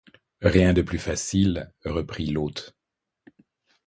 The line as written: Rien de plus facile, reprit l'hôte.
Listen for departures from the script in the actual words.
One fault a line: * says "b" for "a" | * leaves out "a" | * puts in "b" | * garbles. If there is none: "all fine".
all fine